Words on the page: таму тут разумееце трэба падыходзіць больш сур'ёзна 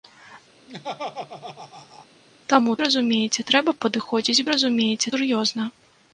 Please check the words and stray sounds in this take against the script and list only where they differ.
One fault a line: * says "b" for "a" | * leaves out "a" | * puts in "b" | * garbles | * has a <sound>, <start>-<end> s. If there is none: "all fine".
* has a laugh, 0.7-2.1 s
* leaves out "тут"
* says "разумееце" for "больш"